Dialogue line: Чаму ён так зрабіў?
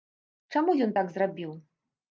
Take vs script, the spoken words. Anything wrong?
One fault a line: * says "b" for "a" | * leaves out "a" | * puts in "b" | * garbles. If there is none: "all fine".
all fine